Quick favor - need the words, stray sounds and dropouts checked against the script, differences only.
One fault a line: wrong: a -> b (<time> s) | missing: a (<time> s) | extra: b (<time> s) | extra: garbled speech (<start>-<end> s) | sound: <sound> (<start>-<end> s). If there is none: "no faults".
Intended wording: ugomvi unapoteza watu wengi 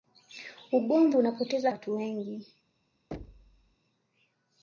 sound: thud (3.1-3.8 s)